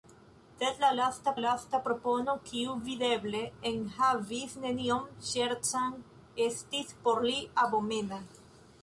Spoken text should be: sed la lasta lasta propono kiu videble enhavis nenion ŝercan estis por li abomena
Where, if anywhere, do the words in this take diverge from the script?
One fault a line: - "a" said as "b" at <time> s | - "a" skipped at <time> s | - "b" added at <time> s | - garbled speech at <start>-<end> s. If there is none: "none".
none